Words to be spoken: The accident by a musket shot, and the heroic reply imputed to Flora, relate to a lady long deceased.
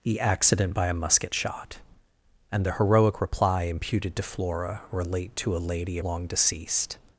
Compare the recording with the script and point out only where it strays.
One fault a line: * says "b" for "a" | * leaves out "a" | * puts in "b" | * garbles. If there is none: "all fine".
all fine